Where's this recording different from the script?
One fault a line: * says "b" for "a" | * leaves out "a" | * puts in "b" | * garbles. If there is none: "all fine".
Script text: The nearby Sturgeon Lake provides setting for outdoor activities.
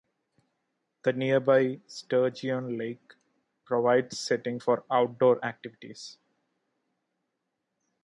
all fine